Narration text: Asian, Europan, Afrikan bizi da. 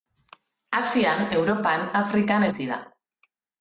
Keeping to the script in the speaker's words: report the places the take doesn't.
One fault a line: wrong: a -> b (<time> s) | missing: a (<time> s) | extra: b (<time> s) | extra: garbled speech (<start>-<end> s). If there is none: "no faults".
no faults